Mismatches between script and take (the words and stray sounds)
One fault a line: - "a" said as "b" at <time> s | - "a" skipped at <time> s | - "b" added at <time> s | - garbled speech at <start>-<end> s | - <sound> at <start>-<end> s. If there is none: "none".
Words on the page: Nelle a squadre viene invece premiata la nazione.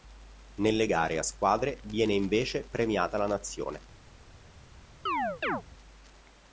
- "gare" added at 0.9 s
- chirp at 5.1-5.6 s